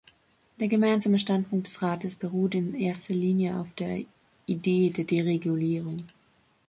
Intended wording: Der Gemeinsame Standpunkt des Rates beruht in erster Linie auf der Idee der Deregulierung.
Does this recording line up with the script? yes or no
yes